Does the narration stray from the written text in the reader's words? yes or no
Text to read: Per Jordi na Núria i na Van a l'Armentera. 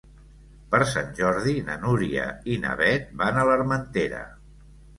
yes